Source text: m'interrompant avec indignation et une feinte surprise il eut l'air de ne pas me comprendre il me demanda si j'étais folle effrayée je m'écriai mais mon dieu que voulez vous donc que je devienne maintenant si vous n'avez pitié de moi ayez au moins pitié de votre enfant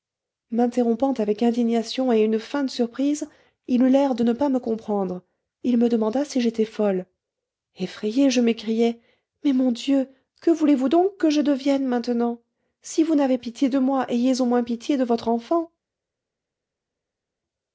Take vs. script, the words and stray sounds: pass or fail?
pass